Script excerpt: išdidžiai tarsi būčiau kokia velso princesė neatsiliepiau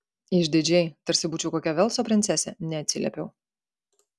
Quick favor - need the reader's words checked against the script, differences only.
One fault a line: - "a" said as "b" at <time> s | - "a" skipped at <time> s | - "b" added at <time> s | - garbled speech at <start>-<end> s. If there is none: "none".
none